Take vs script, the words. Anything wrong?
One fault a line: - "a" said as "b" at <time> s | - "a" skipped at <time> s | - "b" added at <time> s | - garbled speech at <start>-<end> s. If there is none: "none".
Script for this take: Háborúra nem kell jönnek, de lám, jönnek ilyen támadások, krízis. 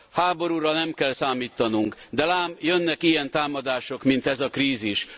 - "jönnek" said as "számítanunk" at 1.1 s
- "mint ez a" added at 4.0 s